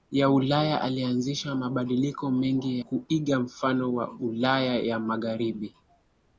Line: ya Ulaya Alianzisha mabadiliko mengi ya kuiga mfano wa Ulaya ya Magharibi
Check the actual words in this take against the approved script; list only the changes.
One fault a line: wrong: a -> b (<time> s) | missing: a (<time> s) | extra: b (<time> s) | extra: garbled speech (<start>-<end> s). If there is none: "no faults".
missing: ya (2.8 s)